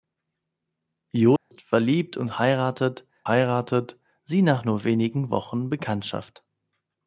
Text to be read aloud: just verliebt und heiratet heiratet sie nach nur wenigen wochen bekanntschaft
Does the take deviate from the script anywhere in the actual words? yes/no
no